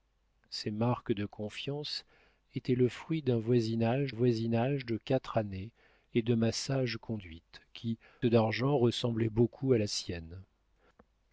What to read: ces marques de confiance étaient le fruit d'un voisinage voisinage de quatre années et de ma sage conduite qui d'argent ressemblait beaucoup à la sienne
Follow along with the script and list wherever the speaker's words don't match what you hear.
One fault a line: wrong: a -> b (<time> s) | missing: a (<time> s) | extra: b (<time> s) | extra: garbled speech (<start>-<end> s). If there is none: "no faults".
no faults